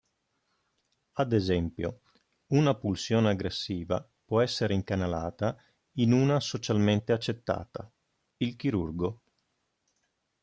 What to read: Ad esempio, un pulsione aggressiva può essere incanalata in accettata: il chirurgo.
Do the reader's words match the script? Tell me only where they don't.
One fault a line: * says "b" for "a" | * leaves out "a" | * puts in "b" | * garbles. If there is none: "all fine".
* says "una" for "un"
* puts in "una socialmente"